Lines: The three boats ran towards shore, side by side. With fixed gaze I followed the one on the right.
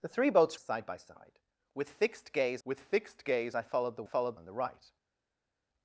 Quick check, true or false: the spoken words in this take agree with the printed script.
false